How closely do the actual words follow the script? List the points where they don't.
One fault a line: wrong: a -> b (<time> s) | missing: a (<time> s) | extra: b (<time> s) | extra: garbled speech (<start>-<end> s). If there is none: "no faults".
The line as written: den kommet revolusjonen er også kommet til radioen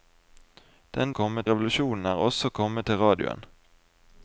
no faults